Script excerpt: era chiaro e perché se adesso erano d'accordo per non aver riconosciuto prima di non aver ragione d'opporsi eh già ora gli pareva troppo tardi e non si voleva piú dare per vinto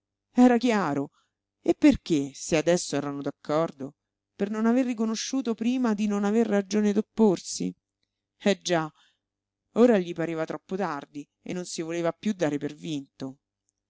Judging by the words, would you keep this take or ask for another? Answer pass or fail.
pass